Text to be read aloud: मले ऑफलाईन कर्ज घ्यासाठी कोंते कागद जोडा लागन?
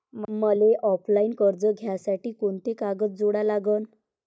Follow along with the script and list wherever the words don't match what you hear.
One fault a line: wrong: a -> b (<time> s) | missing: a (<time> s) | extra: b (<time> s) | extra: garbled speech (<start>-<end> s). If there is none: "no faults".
no faults